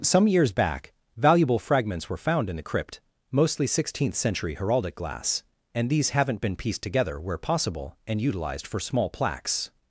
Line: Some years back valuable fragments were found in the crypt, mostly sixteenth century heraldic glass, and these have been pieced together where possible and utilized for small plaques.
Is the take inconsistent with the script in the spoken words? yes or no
yes